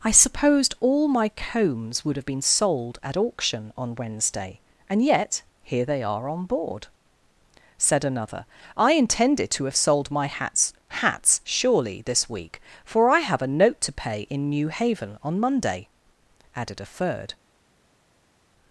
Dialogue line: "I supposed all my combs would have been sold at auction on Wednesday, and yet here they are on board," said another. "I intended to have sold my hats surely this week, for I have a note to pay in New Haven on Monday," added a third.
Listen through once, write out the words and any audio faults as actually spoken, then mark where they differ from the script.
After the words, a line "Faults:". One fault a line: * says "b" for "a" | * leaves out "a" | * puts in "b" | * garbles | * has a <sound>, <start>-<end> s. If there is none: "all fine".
"I supposed all my combs would have been sold at auction on Wednesday, and yet here they are on board," said another. "I intended to have sold my hats hats surely this week, for I have a note to pay in New Haven on Monday," added a third.
Faults:
* puts in "hats"